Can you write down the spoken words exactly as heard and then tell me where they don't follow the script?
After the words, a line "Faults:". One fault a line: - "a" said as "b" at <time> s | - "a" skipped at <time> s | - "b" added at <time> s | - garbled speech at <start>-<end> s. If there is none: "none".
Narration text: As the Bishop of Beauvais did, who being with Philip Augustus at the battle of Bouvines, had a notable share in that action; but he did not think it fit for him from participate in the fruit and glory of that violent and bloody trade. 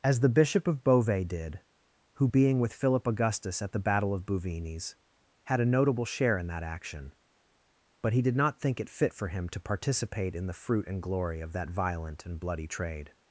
As the Bishop of Beauvais did, who being with Philip Augustus at the battle of Bouvines, had a notable share in that action; but he did not think it fit for him to participate in the fruit and glory of that violent and bloody trade.
Faults:
- "from" said as "to" at 9.5 s